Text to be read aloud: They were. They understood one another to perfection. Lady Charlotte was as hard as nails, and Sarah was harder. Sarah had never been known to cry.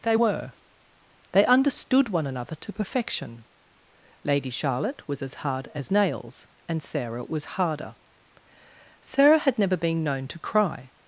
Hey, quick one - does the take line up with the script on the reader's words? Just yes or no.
yes